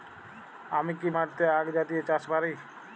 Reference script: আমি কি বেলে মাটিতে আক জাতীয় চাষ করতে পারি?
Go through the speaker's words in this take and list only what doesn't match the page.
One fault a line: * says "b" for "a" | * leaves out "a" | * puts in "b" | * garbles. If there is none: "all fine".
* leaves out "বেলে"
* leaves out "করতে"